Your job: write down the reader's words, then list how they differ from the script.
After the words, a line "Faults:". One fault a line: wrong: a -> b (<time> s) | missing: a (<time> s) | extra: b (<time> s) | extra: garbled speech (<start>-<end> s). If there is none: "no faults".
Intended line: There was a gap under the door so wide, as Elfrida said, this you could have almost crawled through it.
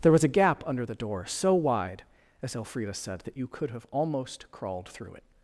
There was a gap under the door so wide, as Elfrida said, that you could have almost crawled through it.
Faults:
wrong: this -> that (3.2 s)